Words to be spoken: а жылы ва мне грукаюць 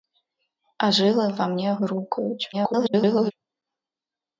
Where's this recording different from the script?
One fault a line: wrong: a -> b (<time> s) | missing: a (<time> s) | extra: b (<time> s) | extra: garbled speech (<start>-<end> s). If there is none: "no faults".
extra: garbled speech (2.5-3.3 s)